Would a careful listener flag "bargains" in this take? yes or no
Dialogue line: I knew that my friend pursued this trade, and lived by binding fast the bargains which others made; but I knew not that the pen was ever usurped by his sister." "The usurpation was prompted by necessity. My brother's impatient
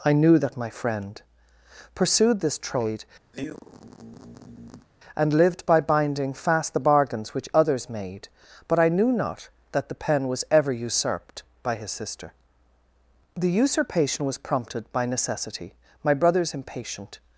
no